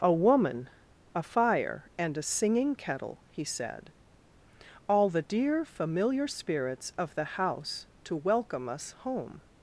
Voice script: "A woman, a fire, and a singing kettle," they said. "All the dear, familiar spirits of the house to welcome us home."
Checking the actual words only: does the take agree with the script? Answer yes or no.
no